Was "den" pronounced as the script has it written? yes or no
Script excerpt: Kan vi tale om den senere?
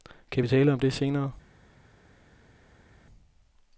no